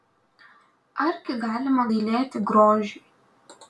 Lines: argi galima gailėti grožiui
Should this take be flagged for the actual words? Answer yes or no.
no